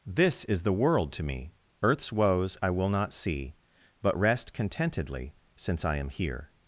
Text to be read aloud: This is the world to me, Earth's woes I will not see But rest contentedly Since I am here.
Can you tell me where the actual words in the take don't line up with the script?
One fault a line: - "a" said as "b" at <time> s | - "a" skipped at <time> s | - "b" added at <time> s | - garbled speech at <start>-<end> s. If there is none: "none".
none